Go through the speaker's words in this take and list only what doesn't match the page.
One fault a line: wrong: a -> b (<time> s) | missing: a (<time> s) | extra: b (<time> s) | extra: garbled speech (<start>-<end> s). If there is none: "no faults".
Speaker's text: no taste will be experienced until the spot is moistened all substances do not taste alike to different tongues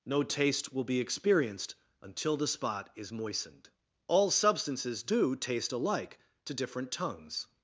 missing: not (5.3 s)